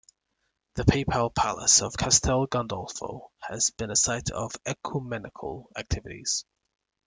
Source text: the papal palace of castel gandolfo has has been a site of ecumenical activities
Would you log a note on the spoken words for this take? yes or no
yes